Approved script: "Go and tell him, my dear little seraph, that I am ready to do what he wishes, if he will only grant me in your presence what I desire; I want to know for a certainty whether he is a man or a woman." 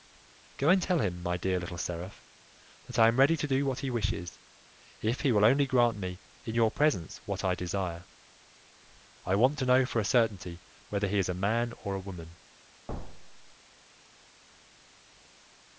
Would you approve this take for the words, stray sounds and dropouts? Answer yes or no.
no